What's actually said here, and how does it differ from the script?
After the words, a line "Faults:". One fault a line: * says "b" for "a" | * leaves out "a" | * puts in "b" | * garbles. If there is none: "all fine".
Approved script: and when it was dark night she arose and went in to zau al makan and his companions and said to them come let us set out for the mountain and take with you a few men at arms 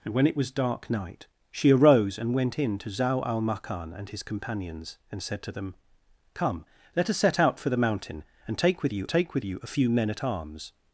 and when it was dark night she arose and went in to zau al makan and his companions and said to them come let us set out for the mountain and take with you take with you a few men at arms
Faults:
* puts in "take with you"